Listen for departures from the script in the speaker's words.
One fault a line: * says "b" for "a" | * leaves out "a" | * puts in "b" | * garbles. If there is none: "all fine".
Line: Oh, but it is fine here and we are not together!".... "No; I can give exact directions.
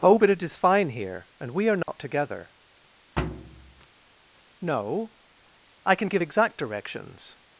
all fine